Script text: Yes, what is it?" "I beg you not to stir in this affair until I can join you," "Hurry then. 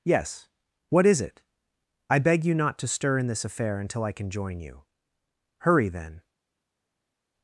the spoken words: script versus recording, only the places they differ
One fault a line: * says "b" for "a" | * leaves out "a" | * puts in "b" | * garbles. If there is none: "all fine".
all fine